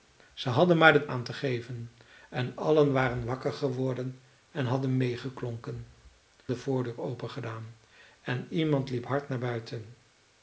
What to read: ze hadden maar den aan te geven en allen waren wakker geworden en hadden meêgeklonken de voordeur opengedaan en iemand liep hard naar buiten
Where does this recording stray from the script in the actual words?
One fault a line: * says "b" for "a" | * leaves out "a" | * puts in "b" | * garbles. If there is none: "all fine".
all fine